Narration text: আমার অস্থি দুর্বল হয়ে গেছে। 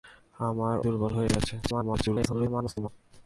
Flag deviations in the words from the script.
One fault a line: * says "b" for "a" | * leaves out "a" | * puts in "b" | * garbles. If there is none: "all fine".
* leaves out "অস্থি"
* garbles